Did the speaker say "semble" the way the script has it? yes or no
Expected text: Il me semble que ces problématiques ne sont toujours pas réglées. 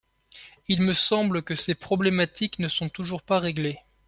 yes